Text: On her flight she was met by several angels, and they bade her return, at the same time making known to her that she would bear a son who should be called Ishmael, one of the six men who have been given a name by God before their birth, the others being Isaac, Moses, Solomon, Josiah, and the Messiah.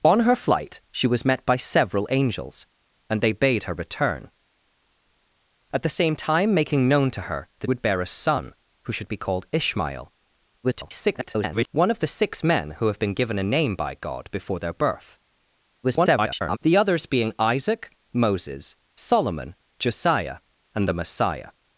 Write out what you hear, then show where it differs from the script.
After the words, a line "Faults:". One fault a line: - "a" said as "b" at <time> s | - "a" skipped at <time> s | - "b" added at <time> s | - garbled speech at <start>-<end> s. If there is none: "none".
On her flight she was met by several angels, and they bade her return, at the same time making known to her that would bear a son who should be called Ishmael, [garbled] one of the six men who have been given a name by God before their birth, [garbled] the others being Isaac, Moses, Solomon, Josiah, and the Messiah.
Faults:
- "she" skipped at 7.7 s
- garbled speech at 10.6-11.7 s
- garbled speech at 15.8-16.6 s